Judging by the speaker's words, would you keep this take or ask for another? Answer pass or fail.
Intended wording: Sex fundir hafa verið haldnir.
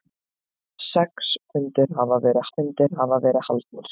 fail